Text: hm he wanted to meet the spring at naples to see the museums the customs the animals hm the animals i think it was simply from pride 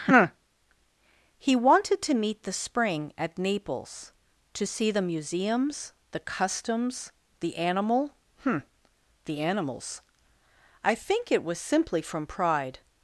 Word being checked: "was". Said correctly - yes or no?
yes